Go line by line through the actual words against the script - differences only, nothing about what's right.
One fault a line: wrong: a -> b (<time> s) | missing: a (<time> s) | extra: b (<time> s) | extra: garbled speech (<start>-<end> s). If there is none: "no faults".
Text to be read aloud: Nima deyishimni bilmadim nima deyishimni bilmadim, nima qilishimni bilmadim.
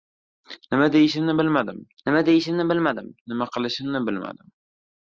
no faults